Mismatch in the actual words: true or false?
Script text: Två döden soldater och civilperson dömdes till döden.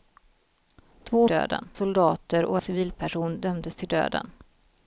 false